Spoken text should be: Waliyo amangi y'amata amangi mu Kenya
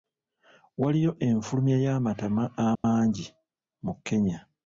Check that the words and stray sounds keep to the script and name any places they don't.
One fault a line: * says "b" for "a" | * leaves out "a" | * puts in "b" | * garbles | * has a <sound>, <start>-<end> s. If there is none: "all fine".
* says "enfulumya" for "amangi"
* has a dropout, 2.8-2.8 s